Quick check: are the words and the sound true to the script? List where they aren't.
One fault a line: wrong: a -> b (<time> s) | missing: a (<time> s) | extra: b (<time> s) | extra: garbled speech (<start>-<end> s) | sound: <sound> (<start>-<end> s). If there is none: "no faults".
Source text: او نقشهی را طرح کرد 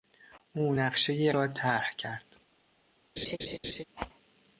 sound: laugh (3.2-3.8 s)